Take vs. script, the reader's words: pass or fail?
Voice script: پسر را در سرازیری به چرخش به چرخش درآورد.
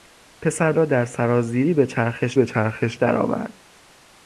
pass